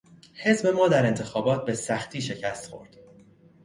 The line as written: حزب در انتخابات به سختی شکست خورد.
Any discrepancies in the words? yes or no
yes